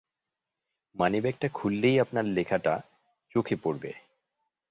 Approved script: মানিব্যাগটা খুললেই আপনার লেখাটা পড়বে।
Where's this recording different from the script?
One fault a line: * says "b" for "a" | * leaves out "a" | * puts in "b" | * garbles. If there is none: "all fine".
* puts in "চোখে"